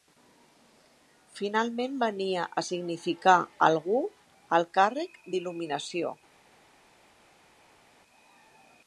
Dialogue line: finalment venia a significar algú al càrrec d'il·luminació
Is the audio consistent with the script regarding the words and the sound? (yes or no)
yes